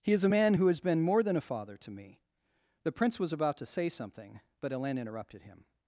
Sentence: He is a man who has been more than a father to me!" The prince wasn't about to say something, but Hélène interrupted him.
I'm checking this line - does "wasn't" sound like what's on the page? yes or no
no